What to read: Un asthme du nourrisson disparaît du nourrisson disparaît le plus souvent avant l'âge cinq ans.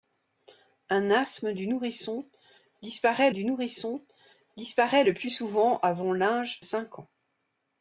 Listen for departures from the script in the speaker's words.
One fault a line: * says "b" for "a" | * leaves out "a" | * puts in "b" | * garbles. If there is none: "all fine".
all fine